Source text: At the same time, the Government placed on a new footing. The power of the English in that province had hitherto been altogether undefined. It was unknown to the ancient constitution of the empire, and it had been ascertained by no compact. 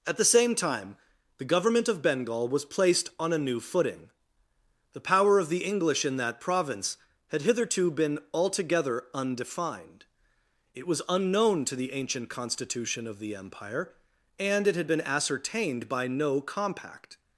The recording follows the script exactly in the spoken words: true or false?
false